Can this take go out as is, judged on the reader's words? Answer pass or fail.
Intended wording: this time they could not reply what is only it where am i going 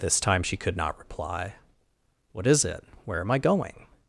fail